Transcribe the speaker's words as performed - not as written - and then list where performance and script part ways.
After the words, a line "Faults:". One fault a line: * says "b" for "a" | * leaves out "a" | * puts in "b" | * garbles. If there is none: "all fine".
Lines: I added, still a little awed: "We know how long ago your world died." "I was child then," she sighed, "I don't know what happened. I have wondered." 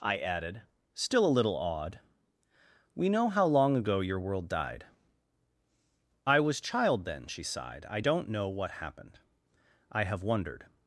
I added, still a little awed: "We know how long ago your world died." "I was child then," she sighed, "I don't know what happened. I have wondered."
Faults:
all fine